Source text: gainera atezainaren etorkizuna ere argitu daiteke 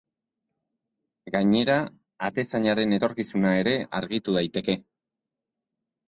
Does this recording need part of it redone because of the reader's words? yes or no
no